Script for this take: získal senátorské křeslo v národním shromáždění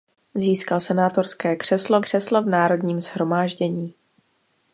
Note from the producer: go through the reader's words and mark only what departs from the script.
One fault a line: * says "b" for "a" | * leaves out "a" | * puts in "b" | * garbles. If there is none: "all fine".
* puts in "křeslo"